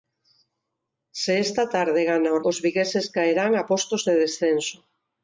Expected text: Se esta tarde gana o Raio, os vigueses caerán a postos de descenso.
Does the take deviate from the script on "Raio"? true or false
true